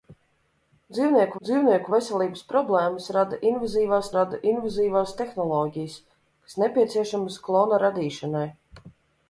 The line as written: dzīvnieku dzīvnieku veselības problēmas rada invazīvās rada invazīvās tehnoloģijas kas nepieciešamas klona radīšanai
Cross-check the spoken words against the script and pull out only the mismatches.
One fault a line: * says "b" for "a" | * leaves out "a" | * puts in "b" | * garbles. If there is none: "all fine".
all fine